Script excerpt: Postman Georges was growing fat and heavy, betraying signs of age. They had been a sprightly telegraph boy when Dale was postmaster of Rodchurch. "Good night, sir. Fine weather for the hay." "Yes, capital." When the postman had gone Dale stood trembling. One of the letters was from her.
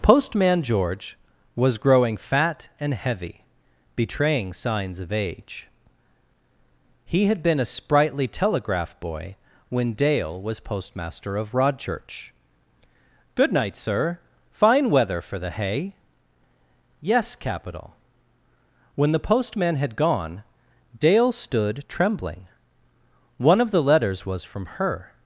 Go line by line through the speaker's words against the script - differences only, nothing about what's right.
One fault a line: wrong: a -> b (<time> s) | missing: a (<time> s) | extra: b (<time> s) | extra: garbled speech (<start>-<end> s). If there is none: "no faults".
wrong: Georges -> George (0.6 s)
wrong: They -> He (7.0 s)